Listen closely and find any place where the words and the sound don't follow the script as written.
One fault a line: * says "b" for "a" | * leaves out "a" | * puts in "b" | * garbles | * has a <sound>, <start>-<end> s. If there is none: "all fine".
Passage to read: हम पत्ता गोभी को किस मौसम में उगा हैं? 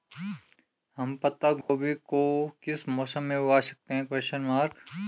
* has a dropout, 1.6-1.7 s
* puts in "सकते"